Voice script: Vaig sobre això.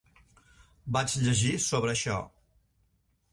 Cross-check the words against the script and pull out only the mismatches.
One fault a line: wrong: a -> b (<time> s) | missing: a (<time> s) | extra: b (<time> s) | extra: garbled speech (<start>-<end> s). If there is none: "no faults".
extra: llegir (1.2 s)